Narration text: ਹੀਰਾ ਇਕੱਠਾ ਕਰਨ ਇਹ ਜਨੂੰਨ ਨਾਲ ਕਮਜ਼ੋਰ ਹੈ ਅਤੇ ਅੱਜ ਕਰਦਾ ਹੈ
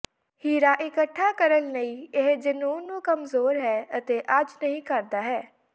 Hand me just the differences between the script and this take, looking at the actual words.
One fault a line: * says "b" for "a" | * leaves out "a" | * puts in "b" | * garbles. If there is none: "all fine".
* puts in "ਲਈ"
* says "ਨੂੰ" for "ਨਾਲ"
* puts in "ਨਹੀ"